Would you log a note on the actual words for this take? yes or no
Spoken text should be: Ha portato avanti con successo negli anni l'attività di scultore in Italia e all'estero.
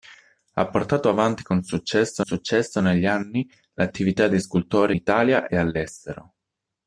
yes